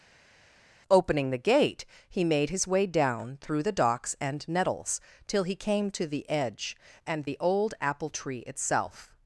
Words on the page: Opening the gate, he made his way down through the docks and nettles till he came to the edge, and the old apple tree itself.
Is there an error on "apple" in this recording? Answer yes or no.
no